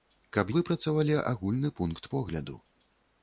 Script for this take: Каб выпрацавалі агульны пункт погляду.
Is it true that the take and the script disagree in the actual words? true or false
false